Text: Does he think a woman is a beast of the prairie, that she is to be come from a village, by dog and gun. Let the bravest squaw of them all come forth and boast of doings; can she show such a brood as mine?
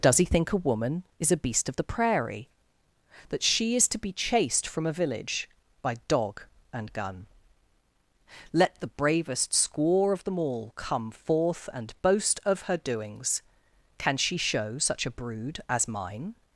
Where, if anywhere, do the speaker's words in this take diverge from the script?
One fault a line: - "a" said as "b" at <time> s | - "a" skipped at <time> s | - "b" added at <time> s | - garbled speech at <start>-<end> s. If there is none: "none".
- "come" said as "chased" at 4.1 s
- "her" added at 12.6 s